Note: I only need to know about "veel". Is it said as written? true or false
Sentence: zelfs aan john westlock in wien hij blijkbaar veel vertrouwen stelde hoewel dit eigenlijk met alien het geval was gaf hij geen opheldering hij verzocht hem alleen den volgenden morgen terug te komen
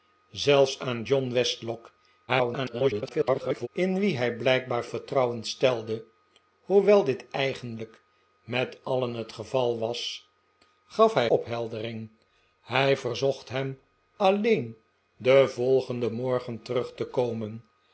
false